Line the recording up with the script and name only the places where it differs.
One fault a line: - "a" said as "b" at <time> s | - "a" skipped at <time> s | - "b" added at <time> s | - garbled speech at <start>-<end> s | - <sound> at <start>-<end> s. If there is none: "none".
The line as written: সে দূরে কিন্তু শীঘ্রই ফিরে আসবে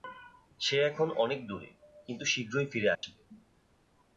- "এখন অনেক" added at 0.8 s
- dropout at 3.0-3.0 s